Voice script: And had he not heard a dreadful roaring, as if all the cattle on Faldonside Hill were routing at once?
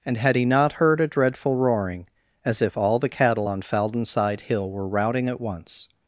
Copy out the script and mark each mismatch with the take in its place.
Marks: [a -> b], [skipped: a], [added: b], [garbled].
And had he not heard a dreadful roaring, as if all the cattle on Faldonside Hill were routing at once?